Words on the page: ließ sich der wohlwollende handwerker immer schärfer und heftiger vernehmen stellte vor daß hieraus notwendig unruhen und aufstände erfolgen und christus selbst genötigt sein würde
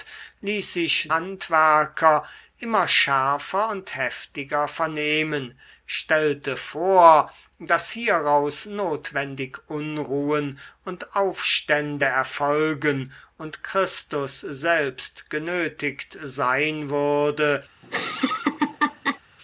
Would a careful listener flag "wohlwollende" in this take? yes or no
yes